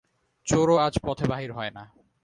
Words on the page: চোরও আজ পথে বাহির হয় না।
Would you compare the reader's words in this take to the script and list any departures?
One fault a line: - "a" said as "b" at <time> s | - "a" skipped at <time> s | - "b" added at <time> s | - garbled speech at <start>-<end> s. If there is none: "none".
none